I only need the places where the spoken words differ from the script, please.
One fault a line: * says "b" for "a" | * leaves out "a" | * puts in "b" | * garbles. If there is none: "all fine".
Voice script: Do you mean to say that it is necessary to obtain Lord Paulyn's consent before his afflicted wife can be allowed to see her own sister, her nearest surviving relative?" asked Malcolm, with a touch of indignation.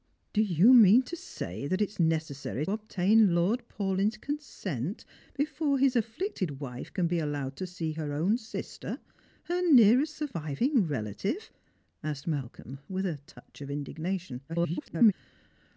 * leaves out "to"
* garbles